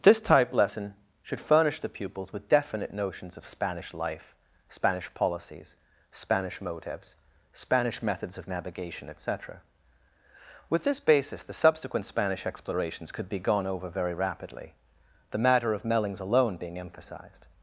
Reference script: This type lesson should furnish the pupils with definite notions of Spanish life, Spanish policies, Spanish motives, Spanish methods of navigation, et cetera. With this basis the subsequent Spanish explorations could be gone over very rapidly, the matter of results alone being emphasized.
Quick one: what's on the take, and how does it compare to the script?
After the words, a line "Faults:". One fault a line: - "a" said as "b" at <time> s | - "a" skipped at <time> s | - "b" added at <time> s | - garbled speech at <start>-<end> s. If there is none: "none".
This type lesson should furnish the pupils with definite notions of Spanish life, Spanish policies, Spanish motives, Spanish methods of navigation, et cetera. With this basis the subsequent Spanish explorations could be gone over very rapidly, the matter of mellings alone being emphasized.
Faults:
- "results" said as "mellings" at 15.8 s